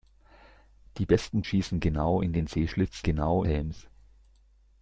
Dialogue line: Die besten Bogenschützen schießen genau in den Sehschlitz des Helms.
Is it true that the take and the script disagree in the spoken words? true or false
true